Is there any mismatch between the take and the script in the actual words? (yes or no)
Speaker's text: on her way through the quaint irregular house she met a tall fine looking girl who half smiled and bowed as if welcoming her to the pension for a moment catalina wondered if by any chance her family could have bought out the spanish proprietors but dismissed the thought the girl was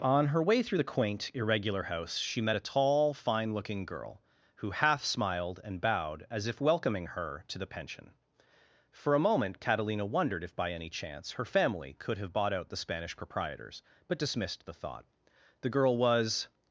no